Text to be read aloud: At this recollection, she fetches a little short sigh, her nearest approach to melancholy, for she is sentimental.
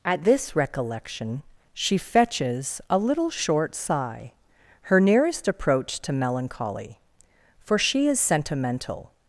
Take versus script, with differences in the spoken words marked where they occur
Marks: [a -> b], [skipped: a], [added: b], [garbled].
At this recollection, she fetches a little short sigh, her nearest approach to melancholy, for she is sentimental.